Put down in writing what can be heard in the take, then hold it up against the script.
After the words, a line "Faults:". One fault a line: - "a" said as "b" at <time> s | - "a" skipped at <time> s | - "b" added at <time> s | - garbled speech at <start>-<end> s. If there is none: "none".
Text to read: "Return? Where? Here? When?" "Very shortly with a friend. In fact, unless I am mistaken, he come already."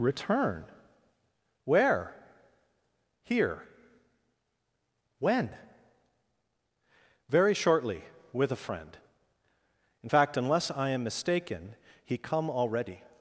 "Return? Where? Here? When?" "Very shortly with a friend. In fact, unless I am mistaken, he come already."
Faults:
none